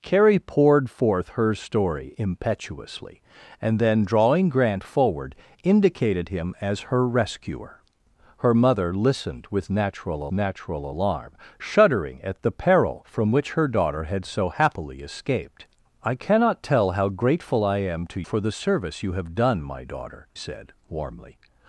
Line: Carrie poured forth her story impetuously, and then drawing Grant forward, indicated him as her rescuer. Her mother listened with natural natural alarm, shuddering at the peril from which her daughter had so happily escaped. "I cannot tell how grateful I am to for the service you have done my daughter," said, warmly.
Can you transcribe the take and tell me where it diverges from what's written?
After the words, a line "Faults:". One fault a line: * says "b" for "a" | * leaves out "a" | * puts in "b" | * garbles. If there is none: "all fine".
Carrie poured forth her story impetuously, and then drawing Grant forward, indicated him as her rescuer. Her mother listened with natural natural alarm, shuddering at the peril from which her daughter had so happily escaped. "I cannot tell how grateful I am to for the service you have done my daughter," said, warmly.
Faults:
all fine